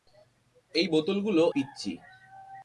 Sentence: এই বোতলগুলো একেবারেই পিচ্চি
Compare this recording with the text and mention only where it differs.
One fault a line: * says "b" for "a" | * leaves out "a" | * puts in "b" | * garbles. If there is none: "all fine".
* leaves out "একেবারেই"